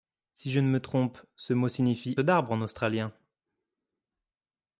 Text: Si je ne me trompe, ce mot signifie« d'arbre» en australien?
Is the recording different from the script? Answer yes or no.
no